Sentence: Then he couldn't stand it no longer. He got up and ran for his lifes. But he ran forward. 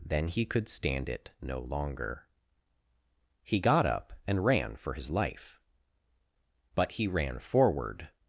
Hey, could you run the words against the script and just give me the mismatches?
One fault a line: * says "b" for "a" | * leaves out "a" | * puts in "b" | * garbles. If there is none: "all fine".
* says "could" for "couldn't"
* says "life" for "lifes"